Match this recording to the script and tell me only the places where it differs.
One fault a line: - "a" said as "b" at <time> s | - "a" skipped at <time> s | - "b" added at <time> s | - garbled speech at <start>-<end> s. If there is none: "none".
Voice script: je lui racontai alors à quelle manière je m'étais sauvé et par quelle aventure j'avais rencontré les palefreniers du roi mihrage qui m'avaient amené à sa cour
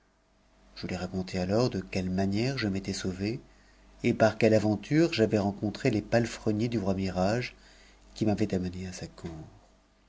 - "à" said as "de" at 1.7 s